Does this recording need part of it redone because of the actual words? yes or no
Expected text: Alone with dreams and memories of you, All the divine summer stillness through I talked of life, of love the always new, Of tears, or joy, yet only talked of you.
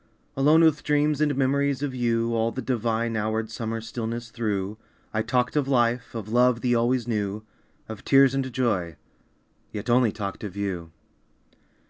yes